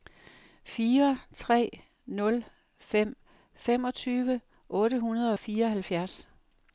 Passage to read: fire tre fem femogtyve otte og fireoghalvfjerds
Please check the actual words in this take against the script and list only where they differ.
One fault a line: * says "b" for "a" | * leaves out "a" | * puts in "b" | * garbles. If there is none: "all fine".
* puts in "nul"
* puts in "hundrede"